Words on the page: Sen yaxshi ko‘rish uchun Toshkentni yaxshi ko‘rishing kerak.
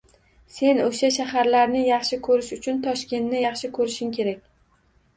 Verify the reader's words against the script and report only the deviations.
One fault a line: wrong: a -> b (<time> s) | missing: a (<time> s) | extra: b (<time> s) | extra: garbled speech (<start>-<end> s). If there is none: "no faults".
extra: o‘sha shaharlarni (0.8 s)